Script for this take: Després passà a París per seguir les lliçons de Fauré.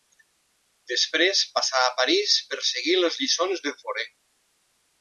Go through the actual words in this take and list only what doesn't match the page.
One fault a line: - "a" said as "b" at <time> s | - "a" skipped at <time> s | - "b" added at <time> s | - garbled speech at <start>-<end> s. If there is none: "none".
none